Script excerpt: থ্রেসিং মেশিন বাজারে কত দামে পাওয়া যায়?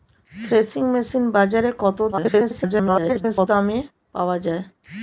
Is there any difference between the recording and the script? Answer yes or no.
yes